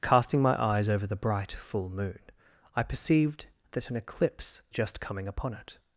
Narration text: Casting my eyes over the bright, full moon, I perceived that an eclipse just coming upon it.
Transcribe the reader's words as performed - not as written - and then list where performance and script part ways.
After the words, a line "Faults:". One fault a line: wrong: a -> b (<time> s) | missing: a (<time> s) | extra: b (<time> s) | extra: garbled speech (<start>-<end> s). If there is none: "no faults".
Casting my eyes over the bright, full moon, I perceived that an eclipse just coming upon it.
Faults:
no faults